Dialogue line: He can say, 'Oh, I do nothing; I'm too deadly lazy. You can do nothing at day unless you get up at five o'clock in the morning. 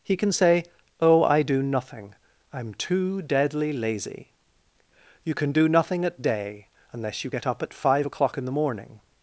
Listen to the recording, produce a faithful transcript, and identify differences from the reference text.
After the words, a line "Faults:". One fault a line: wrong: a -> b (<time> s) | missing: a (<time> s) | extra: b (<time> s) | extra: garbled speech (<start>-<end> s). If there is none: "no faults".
He can say, 'Oh, I do nothing; I'm too deadly lazy. You can do nothing at day unless you get up at five o'clock in the morning.
Faults:
no faults